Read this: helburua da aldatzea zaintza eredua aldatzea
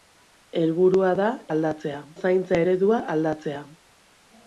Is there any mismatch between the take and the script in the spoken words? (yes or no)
no